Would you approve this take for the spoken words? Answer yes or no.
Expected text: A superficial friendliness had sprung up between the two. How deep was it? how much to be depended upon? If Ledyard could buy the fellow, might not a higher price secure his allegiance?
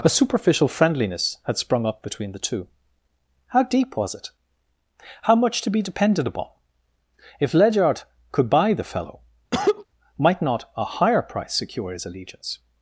yes